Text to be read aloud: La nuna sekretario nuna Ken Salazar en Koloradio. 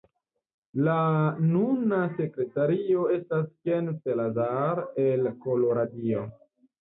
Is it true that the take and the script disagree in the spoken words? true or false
true